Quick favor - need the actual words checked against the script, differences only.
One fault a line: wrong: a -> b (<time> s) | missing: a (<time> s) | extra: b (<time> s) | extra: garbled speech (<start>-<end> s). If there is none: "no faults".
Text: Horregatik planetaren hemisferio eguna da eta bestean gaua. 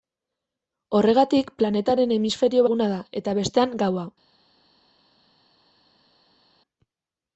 no faults